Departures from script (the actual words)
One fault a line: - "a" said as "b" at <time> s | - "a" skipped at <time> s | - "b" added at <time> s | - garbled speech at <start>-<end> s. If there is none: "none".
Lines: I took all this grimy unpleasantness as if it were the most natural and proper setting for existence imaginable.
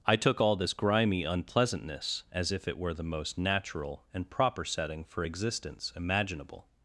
none